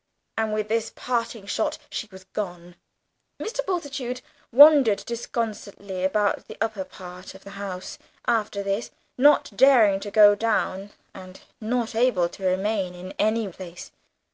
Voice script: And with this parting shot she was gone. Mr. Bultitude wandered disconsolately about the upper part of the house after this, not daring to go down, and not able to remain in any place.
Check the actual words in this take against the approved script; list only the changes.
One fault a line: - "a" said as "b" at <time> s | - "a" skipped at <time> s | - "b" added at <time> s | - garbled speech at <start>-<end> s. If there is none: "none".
none